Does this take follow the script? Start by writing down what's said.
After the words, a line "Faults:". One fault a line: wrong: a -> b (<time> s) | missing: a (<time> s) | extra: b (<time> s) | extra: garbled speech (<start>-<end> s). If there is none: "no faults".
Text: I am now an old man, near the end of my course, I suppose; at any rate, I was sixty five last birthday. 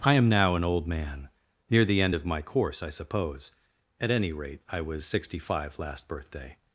I am now an old man, near the end of my course, I suppose; at any rate, I was sixty five last birthday.
Faults:
no faults